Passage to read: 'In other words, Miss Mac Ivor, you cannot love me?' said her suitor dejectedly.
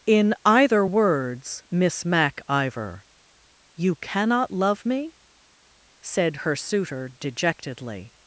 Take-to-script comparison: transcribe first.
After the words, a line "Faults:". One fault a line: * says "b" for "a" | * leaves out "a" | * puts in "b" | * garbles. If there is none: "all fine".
'In either words, Miss Mac Ivor, you cannot love me?' said her suitor dejectedly.
Faults:
* says "either" for "other"